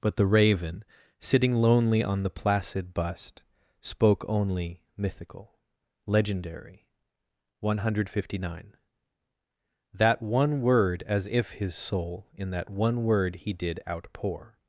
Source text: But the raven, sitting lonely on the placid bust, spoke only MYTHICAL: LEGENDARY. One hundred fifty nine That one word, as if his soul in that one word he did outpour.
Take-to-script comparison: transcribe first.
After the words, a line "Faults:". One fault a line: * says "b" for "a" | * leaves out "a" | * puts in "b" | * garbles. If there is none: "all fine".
But the raven, sitting lonely on the placid bust, spoke only MYTHICAL: LEGENDARY. One hundred fifty nine That one word, as if his soul in that one word he did outpour.
Faults:
all fine